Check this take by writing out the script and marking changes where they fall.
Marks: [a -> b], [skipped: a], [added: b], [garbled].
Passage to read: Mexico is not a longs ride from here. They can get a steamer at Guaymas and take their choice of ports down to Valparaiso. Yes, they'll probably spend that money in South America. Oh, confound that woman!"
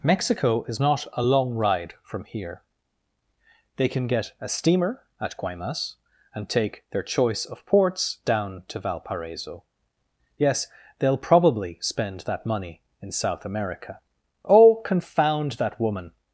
Mexico is not a [longs -> long] ride from here. They can get a steamer at Guaymas and take their choice of ports down to Valparaiso. Yes, they'll probably spend that money in South America. Oh, confound that woman!"